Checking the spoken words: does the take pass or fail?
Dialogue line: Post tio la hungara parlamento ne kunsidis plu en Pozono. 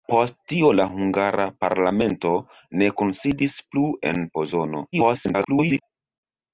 fail